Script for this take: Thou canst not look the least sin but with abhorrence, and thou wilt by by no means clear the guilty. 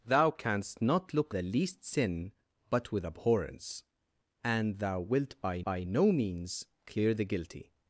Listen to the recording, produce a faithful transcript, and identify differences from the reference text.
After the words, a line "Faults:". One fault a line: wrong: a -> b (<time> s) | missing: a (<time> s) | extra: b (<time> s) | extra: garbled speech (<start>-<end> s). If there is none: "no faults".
Thou canst not look the least sin but with abhorrence, and thou wilt by by no means clear the guilty.
Faults:
no faults